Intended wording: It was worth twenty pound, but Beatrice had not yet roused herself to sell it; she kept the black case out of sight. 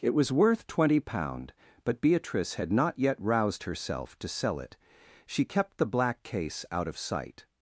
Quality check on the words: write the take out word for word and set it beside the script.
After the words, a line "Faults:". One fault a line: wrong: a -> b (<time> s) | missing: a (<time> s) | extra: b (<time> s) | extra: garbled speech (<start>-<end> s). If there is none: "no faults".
It was worth twenty pound, but Beatrice had not yet roused herself to sell it; she kept the black case out of sight.
Faults:
no faults